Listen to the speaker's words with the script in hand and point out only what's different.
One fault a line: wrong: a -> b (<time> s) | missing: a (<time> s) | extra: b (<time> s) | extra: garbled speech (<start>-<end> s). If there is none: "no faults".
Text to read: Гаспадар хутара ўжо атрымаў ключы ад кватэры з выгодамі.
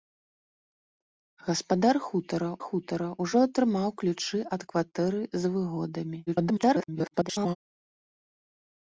extra: хутара (2.7 s)
extra: garbled speech (6.3-7.6 s)